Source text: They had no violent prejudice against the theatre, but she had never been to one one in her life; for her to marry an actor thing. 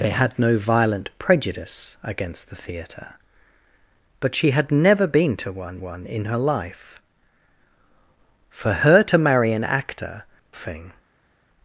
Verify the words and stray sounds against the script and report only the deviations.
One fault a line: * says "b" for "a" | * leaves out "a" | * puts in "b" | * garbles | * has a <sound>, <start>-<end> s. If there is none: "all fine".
all fine